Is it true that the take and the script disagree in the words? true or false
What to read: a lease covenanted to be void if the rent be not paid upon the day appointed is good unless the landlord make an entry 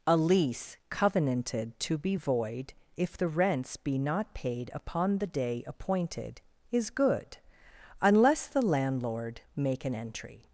true